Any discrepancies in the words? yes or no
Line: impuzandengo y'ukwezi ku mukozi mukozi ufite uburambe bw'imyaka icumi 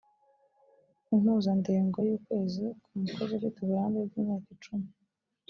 yes